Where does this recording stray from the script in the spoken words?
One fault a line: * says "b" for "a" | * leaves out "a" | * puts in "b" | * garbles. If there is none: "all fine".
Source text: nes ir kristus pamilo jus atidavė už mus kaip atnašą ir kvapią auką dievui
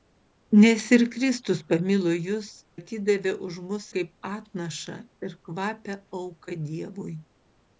all fine